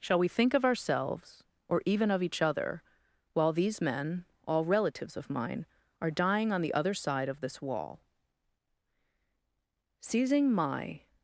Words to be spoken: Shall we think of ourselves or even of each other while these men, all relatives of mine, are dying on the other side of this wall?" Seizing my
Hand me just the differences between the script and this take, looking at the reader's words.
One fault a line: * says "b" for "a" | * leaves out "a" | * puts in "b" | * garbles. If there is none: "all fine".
all fine